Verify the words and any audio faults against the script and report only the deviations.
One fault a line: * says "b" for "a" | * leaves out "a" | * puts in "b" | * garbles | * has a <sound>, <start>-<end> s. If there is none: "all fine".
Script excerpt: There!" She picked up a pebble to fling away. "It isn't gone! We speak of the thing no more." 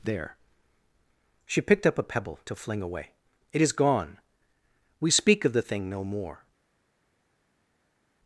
* says "is" for "isn't"